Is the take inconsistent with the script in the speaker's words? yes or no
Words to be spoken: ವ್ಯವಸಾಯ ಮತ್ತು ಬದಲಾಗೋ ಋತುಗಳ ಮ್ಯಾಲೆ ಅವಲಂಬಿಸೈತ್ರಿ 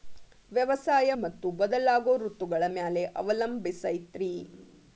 no